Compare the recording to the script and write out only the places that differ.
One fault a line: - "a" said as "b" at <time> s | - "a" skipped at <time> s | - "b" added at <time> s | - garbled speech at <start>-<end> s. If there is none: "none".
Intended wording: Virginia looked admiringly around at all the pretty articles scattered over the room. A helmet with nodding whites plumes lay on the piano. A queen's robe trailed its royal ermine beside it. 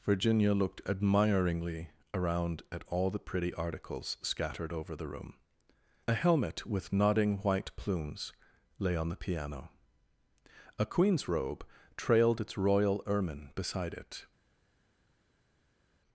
- "whites" said as "white" at 7.4 s